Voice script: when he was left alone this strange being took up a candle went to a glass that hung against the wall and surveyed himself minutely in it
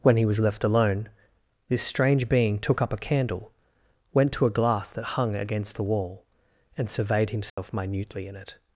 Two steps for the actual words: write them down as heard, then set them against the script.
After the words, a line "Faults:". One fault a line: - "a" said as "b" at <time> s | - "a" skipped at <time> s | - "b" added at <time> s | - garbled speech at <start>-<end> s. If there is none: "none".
when he was left alone this strange being took up a candle went to a glass that hung against the wall and surveyed himself minutely in it
Faults:
none